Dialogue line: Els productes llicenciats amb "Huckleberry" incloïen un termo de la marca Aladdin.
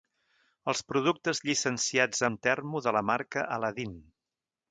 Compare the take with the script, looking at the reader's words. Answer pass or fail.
fail